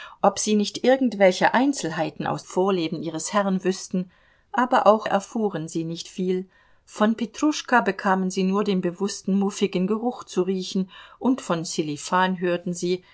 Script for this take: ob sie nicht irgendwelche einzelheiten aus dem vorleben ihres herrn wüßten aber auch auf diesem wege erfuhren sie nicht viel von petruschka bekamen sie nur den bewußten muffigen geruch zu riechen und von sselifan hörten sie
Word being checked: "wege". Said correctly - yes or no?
no